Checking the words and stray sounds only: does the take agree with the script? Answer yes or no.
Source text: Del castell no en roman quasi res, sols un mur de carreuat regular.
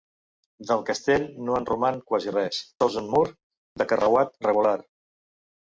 yes